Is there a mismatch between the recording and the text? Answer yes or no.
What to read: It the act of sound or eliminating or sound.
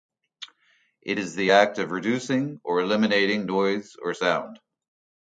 yes